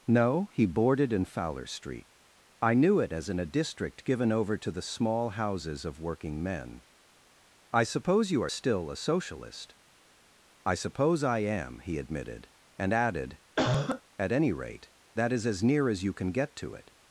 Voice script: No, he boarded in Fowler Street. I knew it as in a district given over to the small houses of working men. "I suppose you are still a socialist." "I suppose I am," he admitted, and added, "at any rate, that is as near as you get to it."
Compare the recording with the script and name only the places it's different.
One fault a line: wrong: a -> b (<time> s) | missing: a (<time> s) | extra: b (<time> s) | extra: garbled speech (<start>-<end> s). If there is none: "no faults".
extra: can (16.1 s)